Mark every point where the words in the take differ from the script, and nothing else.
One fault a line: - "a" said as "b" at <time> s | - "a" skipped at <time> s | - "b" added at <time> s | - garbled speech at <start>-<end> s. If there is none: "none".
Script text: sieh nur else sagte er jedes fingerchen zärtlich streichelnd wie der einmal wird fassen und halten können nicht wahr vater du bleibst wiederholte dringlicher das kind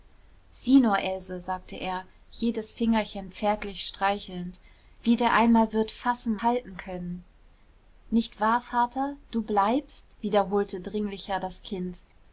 - "und" skipped at 6.4 s